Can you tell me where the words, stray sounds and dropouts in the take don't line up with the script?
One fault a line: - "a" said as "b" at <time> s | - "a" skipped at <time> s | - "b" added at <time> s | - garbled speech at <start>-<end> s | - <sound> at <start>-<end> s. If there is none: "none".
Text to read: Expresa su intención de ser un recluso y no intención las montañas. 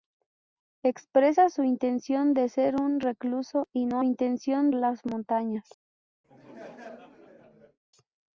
- laugh at 6.2-7.8 s